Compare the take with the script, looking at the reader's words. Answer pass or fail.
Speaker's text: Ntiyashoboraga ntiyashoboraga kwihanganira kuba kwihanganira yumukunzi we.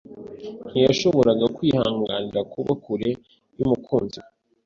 fail